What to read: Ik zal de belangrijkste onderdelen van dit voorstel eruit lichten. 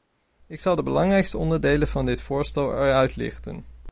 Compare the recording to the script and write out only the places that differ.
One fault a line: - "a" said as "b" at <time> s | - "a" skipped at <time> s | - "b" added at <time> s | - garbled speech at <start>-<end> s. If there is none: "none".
none